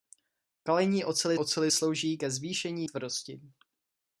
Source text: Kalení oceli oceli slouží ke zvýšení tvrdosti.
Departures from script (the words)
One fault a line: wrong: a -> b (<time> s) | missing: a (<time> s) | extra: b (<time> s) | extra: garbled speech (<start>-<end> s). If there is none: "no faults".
no faults